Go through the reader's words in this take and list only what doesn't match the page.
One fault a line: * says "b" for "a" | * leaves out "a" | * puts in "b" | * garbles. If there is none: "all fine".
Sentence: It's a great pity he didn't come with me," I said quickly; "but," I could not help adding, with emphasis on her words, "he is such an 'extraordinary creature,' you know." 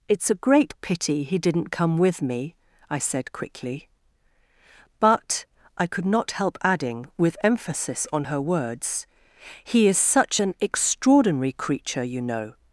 all fine